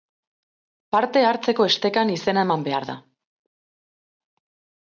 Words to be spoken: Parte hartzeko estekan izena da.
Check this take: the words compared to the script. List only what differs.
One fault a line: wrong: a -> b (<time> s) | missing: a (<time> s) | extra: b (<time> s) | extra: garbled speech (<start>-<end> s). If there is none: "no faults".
extra: eman behar (2.5 s)